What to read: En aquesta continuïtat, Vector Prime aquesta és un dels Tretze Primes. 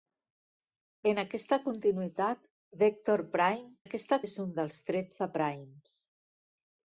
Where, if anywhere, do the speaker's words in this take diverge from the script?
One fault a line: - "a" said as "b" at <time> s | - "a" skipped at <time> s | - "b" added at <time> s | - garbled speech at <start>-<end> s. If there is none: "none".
none